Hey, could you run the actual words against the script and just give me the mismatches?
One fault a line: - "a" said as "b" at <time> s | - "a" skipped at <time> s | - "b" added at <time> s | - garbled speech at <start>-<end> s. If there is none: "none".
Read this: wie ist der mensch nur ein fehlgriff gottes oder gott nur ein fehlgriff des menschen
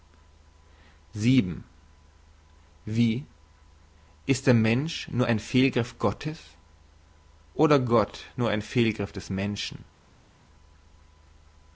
none